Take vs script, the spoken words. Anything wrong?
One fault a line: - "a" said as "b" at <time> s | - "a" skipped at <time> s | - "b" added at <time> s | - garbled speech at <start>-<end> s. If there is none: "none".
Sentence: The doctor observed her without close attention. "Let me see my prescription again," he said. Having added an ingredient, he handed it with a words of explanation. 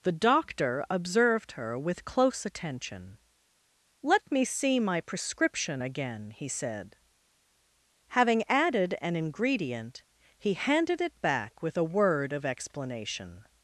- "without" said as "with" at 1.8 s
- "back" added at 11.2 s
- "words" said as "word" at 11.9 s